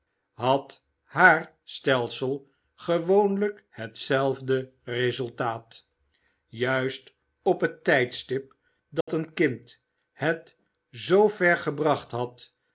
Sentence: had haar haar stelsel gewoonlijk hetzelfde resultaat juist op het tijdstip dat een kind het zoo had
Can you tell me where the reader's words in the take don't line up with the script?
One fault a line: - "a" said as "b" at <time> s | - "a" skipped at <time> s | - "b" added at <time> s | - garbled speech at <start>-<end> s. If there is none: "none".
- "haar" skipped at 1.6 s
- "ver gebracht" added at 11.3 s